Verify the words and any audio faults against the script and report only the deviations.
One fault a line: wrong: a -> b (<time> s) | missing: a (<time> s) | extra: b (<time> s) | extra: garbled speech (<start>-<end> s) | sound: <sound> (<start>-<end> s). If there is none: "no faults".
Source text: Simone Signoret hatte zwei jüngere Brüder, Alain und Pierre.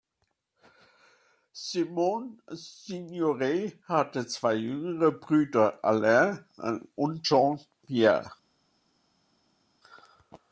extra: Jean (7.2 s)